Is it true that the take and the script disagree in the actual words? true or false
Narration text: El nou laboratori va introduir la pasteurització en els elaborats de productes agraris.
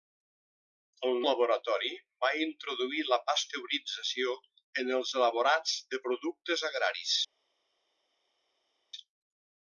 true